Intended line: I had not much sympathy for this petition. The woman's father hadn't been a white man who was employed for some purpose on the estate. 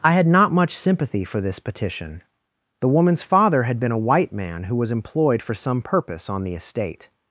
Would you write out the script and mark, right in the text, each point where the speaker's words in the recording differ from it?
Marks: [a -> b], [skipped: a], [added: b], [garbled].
I had not much sympathy for this petition. The woman's father [hadn't -> had] been a white man who was employed for some purpose on the estate.